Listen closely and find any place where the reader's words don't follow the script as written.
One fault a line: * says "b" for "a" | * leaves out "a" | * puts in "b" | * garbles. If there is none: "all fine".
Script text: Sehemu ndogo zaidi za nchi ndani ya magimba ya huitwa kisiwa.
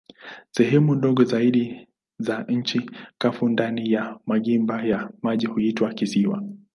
* puts in "kavu"
* puts in "maji"